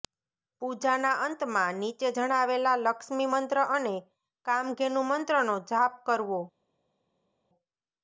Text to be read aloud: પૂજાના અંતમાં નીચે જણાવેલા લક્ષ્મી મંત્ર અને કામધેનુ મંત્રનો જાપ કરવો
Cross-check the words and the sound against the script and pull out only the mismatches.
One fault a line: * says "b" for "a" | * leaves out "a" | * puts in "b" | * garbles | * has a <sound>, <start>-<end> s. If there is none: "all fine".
all fine